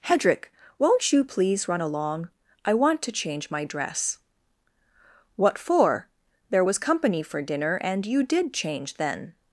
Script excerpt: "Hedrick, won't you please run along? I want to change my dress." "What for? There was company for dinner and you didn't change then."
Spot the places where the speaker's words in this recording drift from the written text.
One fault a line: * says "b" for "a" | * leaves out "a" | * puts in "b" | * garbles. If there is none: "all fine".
* says "did" for "didn't"